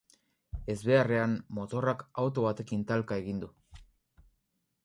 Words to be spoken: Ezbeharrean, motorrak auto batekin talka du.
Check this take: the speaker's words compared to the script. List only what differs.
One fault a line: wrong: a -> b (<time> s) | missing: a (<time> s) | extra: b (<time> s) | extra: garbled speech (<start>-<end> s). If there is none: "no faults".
extra: egin (3.2 s)